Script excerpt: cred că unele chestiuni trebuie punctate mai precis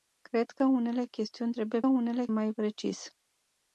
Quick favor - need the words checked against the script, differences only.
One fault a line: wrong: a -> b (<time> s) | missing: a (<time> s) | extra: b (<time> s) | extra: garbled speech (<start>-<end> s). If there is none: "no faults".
wrong: punctate -> unele (1.9 s)